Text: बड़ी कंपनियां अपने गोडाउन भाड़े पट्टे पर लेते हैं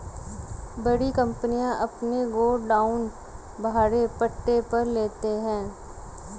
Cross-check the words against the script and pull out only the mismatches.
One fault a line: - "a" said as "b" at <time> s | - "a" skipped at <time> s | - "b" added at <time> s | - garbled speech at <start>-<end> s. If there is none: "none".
none